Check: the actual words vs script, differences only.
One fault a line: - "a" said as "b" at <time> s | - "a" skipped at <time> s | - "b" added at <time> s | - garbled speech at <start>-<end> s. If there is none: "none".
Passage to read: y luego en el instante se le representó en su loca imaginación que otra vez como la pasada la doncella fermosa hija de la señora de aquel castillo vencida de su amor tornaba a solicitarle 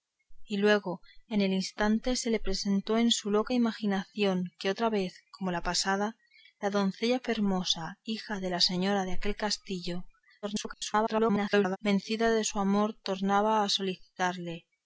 - garbled speech at 10.4-11.8 s